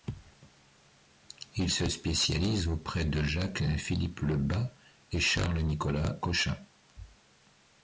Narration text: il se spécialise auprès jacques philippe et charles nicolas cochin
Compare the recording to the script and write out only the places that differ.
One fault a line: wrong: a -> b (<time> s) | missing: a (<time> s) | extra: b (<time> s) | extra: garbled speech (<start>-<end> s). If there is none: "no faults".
extra: de (3.0 s)
extra: le bas (4.2 s)